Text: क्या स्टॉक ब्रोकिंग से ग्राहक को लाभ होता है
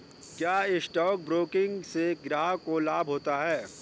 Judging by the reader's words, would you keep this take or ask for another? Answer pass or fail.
pass